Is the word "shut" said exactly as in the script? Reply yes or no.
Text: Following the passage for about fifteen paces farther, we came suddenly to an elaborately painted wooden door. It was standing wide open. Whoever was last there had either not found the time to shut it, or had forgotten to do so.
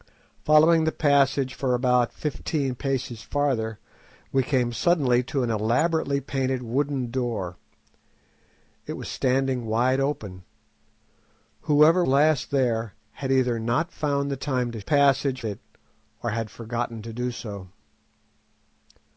no